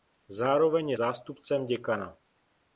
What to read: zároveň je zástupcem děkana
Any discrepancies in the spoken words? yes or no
no